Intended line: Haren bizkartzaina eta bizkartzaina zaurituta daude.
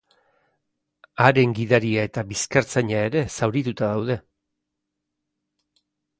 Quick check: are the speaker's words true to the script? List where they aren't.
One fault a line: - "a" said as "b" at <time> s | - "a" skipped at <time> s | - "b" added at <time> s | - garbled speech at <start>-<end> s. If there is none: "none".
- "bizkartzaina" said as "gidaria" at 1.6 s
- "ere" added at 3.1 s